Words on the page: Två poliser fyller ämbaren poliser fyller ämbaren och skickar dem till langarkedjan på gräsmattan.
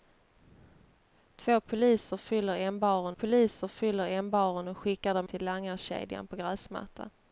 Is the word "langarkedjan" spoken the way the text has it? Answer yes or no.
yes